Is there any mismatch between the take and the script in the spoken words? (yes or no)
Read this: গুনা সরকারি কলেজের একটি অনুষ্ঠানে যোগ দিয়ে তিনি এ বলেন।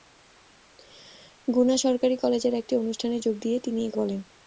no